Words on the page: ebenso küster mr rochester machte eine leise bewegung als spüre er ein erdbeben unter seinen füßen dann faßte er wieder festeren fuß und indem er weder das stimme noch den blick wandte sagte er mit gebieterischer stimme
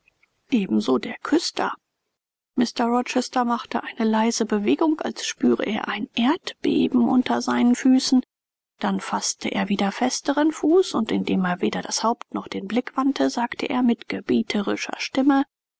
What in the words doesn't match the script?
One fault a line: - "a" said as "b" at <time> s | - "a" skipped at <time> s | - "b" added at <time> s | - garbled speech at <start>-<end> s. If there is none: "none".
- "der" added at 1.0 s
- "stimme" said as "haupt" at 12.0 s